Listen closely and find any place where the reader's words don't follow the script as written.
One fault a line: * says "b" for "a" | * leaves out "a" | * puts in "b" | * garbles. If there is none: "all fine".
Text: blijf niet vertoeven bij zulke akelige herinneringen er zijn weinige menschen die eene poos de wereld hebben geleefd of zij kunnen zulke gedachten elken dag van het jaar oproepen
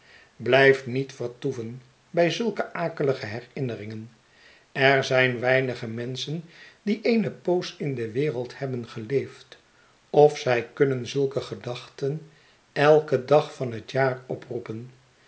* puts in "in"